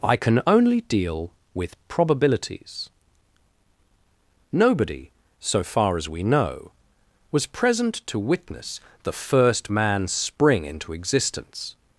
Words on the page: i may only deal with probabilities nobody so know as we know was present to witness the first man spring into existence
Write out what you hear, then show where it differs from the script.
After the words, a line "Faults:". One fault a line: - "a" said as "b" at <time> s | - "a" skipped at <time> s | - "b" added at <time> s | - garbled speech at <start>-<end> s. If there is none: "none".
i can only deal with probabilities nobody so far as we know was present to witness the first man spring into existence
Faults:
- "may" said as "can" at 0.1 s
- "know" said as "far" at 5.6 s